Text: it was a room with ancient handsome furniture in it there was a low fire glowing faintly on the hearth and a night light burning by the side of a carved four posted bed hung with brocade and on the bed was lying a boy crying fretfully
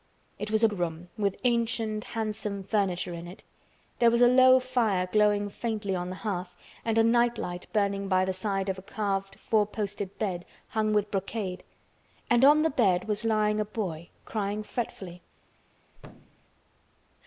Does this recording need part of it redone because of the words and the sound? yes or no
yes